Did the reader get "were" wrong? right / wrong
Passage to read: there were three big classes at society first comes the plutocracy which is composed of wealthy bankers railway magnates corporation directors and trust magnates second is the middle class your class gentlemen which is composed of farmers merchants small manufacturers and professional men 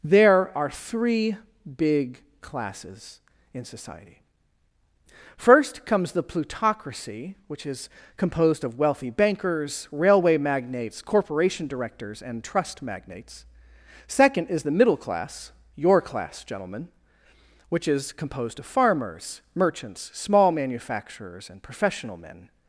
wrong